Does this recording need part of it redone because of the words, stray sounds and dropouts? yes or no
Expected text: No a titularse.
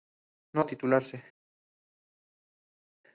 no